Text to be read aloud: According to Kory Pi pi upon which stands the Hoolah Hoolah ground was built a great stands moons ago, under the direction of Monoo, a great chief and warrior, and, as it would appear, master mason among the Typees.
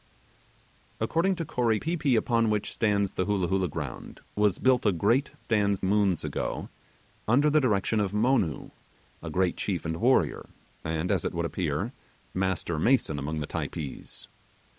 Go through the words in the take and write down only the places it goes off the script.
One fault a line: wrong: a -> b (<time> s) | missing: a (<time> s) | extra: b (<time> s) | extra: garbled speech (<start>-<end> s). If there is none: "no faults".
no faults